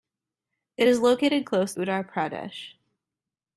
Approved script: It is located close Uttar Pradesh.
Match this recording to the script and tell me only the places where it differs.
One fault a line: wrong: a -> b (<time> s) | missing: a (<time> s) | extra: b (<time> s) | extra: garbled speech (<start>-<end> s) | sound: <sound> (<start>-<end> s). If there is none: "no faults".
no faults